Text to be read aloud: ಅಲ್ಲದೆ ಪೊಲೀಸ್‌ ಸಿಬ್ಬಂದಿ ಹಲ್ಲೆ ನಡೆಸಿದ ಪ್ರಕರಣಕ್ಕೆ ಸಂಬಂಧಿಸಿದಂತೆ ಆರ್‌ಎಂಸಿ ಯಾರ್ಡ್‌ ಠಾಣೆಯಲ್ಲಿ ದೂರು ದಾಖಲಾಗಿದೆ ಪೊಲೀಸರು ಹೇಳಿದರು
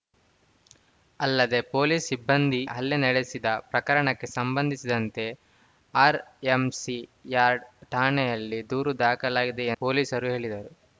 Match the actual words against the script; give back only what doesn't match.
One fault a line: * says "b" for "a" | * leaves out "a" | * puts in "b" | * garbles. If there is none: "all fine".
all fine